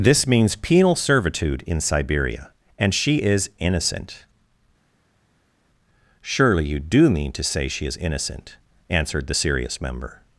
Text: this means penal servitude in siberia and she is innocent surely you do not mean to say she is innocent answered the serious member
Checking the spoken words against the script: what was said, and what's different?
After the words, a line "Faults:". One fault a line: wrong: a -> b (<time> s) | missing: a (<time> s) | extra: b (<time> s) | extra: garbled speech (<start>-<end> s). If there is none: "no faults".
this means penal servitude in siberia and she is innocent surely you do mean to say she is innocent answered the serious member
Faults:
missing: not (7.1 s)